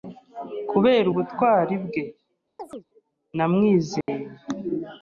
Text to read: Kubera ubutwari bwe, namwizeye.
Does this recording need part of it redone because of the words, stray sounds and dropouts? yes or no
yes